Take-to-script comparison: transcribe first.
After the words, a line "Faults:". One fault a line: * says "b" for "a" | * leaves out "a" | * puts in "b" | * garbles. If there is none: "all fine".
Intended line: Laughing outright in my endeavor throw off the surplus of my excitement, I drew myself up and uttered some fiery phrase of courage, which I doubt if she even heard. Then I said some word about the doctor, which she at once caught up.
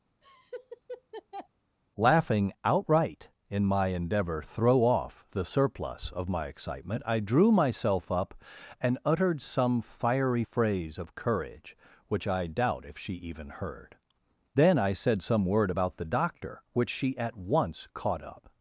Laughing outright in my endeavor throw off the surplus of my excitement, I drew myself up and uttered some fiery phrase of courage, which I doubt if she even heard. Then I said some word about the doctor, which she at once caught up.
Faults:
all fine